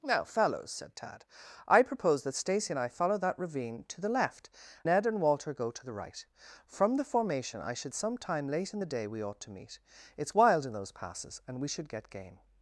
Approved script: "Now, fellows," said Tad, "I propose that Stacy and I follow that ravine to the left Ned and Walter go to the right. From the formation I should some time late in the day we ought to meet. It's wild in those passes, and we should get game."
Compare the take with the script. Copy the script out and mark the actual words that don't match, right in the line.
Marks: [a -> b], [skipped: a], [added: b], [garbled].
"Now, fellows," said Tad, "I propose that Stacy and I follow that ravine to the left Ned and Walter go to the right. From the formation I should some time late in the day we ought to meet. It's wild in those passes, and we should get game."